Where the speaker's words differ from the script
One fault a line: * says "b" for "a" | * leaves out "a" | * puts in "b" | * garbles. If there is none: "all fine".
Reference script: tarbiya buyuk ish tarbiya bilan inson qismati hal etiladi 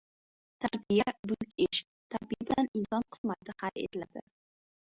all fine